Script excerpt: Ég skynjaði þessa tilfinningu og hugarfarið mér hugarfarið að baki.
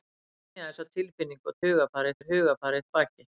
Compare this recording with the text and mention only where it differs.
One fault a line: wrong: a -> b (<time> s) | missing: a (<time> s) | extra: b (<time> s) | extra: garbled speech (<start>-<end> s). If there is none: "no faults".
no faults